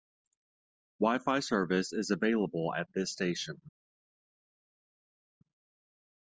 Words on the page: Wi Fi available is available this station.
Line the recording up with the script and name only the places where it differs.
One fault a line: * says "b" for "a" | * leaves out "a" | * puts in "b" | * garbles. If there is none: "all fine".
* says "service" for "available"
* puts in "at"